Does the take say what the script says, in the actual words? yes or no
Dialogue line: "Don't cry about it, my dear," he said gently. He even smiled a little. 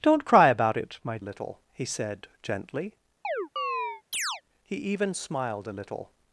no